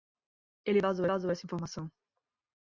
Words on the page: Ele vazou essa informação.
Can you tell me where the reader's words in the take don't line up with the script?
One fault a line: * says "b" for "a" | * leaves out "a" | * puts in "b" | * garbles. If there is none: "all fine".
* puts in "vazou"